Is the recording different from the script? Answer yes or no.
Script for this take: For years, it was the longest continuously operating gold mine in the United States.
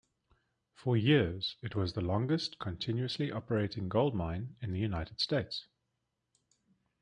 no